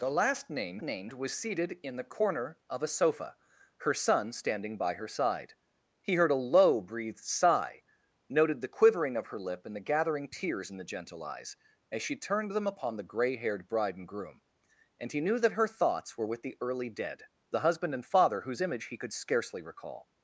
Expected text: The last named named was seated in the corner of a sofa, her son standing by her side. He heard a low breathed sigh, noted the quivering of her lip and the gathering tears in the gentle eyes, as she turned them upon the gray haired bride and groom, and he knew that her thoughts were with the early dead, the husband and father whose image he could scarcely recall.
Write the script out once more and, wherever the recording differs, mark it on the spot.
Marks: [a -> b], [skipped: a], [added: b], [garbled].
The last named named was seated in the corner of a sofa, her son standing by her side. He heard a low breathed sigh, noted the quivering of her lip and the gathering tears in the gentle eyes, as she turned them upon the gray haired bride and groom, and he knew that her thoughts were with the early dead, the husband and father whose image he could scarcely recall.